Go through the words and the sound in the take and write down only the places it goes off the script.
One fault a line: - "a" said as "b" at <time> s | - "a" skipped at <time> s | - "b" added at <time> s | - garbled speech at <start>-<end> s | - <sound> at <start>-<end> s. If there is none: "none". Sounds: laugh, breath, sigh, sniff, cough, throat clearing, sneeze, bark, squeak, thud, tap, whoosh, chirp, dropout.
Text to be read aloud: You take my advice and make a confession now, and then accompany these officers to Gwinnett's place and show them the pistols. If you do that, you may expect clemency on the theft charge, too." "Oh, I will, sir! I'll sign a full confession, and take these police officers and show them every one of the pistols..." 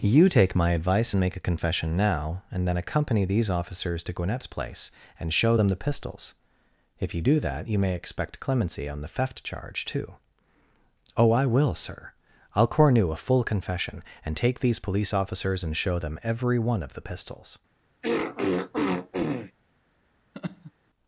- "sign" said as "cornu" at 12.7 s
- throat clearing at 18.0-19.5 s
- laugh at 20.3-20.7 s